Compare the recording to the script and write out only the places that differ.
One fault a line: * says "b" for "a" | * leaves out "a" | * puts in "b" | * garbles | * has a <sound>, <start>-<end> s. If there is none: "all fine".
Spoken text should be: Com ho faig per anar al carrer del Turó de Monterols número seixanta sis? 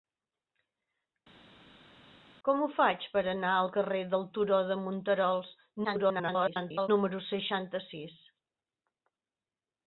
* garbles